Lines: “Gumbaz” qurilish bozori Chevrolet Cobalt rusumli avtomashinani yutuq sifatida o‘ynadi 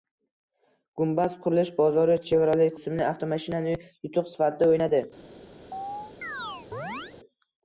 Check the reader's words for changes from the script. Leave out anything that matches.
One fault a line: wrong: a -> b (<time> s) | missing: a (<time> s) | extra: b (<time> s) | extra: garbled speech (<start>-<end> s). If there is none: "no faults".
missing: Cobalt (2.7 s)